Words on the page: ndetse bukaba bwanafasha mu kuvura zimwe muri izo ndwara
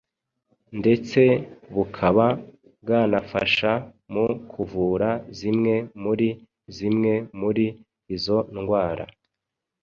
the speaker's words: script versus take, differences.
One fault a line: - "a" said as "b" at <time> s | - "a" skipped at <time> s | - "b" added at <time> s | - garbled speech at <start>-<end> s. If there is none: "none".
- "zimwe muri" added at 6.7 s